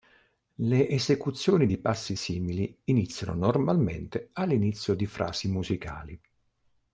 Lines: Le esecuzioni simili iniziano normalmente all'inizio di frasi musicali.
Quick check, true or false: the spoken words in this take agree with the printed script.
false